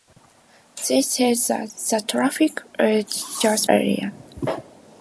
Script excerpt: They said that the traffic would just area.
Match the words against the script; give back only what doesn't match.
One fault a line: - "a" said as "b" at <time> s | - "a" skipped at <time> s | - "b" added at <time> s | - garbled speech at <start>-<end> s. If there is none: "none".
none